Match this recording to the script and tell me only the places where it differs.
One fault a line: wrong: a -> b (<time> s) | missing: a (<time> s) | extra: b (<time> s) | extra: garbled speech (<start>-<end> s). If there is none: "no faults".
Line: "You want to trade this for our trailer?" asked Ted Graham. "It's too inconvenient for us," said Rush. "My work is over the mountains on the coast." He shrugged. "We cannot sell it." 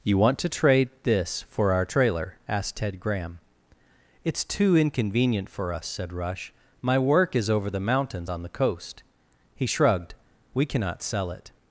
no faults